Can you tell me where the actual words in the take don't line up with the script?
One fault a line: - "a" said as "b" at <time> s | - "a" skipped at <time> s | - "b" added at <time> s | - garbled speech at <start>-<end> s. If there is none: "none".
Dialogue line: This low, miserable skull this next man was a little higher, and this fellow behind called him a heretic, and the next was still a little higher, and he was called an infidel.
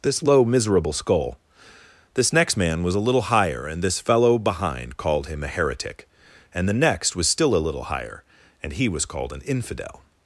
none